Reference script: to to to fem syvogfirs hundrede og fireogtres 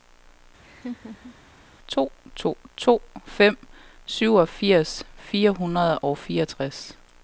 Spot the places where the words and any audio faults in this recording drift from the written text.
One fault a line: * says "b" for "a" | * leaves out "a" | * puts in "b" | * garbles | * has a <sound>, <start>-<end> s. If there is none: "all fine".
* has a laugh, 0.6-1.3 s
* puts in "fire"